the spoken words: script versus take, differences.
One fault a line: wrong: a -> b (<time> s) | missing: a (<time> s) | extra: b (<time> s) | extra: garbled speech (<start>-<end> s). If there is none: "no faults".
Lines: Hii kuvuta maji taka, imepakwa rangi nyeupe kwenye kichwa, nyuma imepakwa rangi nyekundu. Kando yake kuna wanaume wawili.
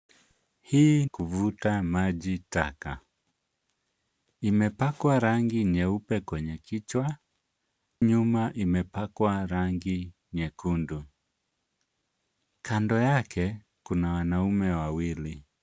no faults